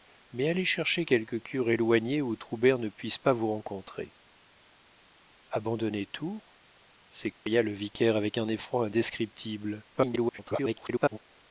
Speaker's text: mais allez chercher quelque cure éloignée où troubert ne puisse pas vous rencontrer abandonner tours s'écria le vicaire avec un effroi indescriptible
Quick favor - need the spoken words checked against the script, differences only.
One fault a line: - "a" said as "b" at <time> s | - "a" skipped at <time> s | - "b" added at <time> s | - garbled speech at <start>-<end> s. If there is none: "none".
- garbled speech at 9.9-11.2 s